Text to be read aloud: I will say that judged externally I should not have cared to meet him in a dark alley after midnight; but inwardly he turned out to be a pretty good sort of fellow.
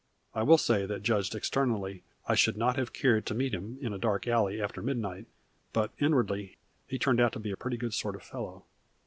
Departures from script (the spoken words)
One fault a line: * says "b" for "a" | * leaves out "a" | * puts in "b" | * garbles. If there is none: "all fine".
all fine